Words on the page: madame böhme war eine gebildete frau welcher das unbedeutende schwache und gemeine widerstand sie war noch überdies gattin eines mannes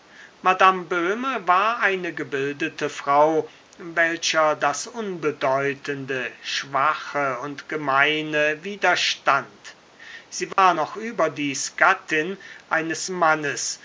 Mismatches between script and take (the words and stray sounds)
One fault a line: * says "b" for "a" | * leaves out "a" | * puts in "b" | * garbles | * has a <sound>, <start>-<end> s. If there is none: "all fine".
* has a dropout, 10.5-10.6 s